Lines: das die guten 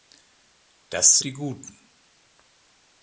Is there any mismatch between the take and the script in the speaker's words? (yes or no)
no